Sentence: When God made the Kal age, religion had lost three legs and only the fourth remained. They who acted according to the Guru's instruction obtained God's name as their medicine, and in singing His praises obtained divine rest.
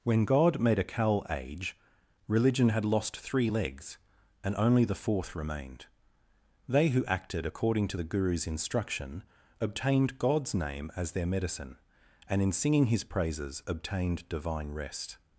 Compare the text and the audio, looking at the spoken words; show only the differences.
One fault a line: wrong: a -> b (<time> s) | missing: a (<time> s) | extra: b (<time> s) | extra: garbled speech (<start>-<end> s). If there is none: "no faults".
wrong: the -> a (0.8 s)